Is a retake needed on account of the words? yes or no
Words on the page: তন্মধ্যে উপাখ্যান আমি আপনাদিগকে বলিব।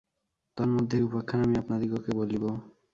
no